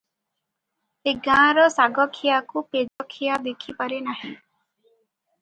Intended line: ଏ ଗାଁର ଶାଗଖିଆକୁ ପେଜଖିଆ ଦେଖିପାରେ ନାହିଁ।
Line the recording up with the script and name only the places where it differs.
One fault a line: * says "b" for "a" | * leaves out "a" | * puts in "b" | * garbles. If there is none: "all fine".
all fine